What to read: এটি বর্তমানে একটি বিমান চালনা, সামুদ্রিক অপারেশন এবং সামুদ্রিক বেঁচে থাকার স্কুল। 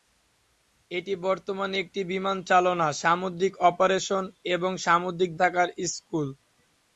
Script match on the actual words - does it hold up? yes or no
no